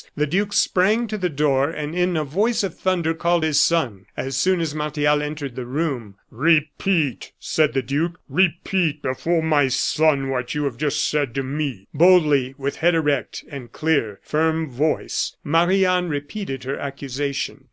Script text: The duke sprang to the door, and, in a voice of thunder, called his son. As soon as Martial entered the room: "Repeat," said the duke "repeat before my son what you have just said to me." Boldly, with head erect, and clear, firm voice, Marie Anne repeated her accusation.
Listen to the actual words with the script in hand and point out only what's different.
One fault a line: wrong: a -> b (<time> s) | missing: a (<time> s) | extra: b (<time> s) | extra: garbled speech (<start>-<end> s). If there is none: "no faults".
no faults